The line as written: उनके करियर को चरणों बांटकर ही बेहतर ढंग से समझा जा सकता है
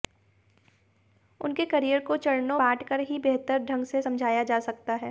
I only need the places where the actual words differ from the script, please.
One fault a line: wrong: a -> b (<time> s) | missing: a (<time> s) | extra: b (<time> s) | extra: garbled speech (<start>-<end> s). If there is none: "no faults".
no faults